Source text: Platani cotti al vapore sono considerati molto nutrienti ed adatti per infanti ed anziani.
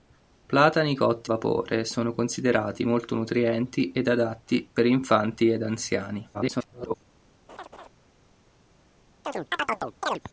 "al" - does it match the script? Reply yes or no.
no